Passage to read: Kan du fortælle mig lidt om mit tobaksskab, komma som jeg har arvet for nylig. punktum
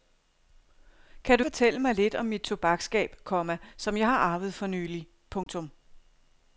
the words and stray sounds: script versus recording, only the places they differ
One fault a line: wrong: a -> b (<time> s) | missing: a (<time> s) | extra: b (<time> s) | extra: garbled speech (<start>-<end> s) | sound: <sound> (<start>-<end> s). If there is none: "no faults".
sound: dropout (5.4-5.5 s)